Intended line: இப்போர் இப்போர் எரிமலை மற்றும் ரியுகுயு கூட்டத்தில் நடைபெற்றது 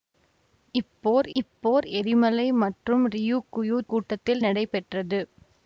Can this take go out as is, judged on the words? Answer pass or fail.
pass